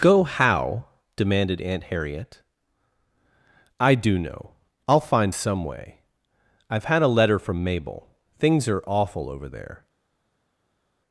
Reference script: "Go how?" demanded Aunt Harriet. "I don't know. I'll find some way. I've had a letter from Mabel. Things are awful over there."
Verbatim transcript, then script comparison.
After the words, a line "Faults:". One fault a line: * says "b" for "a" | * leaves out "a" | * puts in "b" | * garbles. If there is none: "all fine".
"Go how?" demanded Aunt Harriet. "I do know. I'll find some way. I've had a letter from Mabel. Things are awful over there."
Faults:
* says "do" for "don't"